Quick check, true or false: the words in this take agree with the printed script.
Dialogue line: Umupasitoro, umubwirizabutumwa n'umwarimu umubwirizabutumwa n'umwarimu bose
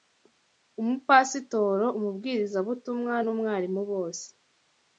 false